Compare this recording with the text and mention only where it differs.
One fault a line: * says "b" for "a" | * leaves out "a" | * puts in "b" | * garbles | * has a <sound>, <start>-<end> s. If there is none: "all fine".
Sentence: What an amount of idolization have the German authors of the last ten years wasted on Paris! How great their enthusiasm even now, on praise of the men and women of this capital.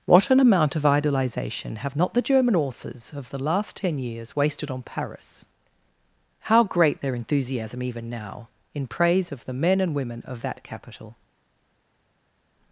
* puts in "not"
* says "in" for "on"
* says "that" for "this"